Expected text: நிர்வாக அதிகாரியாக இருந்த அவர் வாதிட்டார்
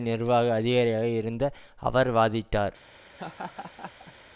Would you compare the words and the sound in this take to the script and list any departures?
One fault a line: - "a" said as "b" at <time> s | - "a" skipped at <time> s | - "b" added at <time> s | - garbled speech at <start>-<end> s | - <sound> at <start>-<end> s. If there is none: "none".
- laugh at 3.1-4.1 s